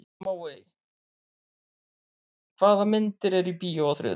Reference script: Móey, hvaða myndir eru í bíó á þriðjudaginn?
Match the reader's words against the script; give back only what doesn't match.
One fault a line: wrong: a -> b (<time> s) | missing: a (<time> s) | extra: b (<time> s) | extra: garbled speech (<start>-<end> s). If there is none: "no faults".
no faults